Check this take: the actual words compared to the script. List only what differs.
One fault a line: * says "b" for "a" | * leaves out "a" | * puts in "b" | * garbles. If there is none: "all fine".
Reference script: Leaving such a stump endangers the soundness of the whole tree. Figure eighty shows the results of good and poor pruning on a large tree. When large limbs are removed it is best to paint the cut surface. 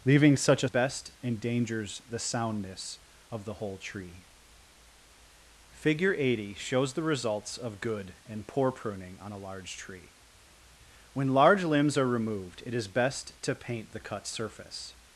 * says "best" for "stump"